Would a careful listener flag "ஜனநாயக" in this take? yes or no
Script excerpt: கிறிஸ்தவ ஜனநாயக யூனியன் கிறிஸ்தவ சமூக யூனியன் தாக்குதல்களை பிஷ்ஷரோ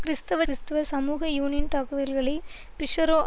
yes